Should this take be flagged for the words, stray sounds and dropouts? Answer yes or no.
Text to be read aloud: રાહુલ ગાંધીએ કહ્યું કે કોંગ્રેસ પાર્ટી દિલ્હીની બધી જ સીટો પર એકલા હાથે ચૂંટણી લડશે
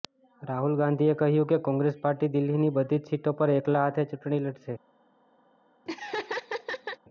yes